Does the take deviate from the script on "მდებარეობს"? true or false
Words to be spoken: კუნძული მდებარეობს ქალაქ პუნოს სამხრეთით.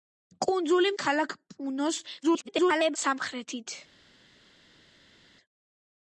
true